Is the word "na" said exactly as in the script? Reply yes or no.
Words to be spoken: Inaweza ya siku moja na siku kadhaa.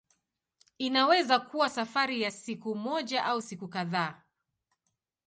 no